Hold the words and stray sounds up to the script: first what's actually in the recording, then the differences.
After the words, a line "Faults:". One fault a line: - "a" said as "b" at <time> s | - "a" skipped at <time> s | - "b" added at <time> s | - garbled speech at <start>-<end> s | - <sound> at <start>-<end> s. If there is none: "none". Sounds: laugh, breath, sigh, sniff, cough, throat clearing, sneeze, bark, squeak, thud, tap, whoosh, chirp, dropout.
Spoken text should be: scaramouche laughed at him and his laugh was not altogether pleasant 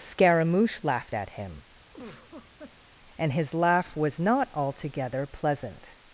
scaramouche laughed at him and his laugh was not altogether pleasant
Faults:
- laugh at 1.9-2.9 s